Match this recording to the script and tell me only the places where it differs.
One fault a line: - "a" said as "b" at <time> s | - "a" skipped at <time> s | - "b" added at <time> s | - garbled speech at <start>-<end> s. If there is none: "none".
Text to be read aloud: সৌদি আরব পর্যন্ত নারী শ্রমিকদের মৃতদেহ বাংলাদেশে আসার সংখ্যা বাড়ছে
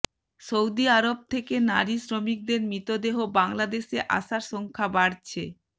- "পর্যন্ত" said as "থেকে" at 1.3 s